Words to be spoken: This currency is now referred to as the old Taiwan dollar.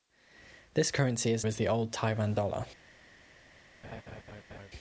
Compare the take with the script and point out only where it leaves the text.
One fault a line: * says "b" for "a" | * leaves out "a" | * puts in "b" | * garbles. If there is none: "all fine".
* leaves out "now referred to"